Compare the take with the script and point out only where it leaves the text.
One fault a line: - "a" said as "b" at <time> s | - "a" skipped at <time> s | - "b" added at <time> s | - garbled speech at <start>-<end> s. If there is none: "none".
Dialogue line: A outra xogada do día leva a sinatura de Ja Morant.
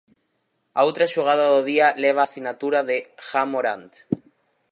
none